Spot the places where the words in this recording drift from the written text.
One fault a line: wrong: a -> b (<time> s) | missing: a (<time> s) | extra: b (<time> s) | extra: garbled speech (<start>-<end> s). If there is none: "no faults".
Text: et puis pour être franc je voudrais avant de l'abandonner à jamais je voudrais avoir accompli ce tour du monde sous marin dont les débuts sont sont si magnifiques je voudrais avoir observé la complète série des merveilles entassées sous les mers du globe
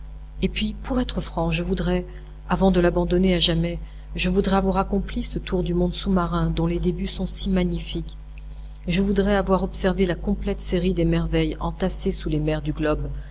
missing: sont (7.3 s)